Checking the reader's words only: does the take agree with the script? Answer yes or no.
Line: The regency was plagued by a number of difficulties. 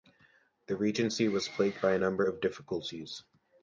yes